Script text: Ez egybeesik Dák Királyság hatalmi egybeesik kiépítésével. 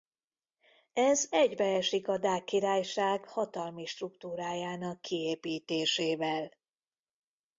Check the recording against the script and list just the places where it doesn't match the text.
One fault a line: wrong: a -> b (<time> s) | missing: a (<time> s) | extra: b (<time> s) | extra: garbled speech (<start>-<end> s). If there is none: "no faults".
extra: a (2.1 s)
wrong: egybeesik -> struktúrájának (3.9 s)